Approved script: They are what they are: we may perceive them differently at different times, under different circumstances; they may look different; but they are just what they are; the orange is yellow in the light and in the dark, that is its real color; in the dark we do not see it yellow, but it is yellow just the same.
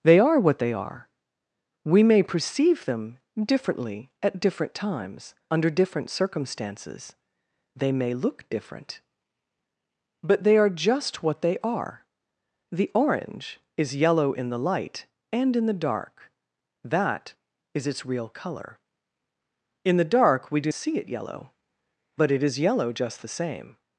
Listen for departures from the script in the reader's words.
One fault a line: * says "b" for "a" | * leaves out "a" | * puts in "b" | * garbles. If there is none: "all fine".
* leaves out "not"